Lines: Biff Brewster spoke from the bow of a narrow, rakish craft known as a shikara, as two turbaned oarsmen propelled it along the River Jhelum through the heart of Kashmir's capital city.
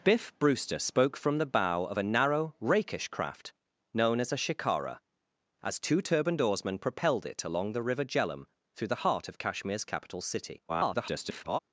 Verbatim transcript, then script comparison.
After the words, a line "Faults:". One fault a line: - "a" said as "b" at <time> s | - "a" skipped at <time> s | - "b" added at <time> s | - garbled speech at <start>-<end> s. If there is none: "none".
Biff Brewster spoke from the bow of a narrow, rakish craft known as a shikara, as two turbaned oarsmen propelled it along the River Jhelum through the heart of Kashmir's capital city. [garbled]
Faults:
- garbled speech at 10.7-11.6 s